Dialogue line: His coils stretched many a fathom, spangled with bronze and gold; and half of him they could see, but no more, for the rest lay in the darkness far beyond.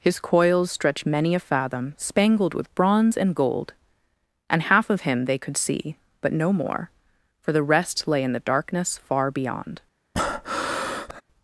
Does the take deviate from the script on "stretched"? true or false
true